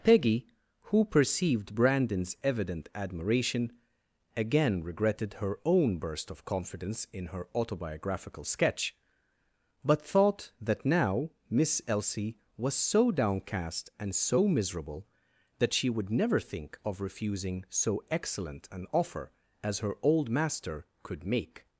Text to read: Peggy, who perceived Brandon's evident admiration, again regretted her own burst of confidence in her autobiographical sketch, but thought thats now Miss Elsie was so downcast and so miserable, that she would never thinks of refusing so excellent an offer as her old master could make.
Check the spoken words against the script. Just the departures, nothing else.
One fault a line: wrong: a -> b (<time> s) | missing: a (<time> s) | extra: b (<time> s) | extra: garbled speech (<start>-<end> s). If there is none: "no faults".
wrong: thats -> that (10.6 s)
wrong: thinks -> think (16.4 s)